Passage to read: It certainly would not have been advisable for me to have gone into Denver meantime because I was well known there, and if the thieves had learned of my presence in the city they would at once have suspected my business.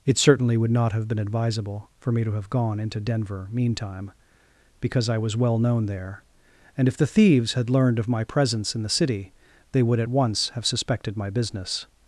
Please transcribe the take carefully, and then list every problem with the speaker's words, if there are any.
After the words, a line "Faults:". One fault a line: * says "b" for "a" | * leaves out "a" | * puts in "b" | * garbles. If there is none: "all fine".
It certainly would not have been advisable for me to have gone into Denver meantime because I was well known there, and if the thieves had learned of my presence in the city they would at once have suspected my business.
Faults:
all fine